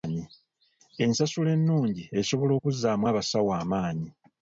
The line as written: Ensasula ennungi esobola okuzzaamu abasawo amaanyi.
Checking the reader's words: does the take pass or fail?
pass